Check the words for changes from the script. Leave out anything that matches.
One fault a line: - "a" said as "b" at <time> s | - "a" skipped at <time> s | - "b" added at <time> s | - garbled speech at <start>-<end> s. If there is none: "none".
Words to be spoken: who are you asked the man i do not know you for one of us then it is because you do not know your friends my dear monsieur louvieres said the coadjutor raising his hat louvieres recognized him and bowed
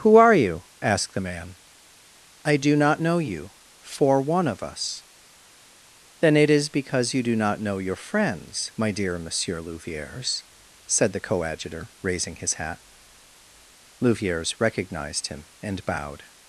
none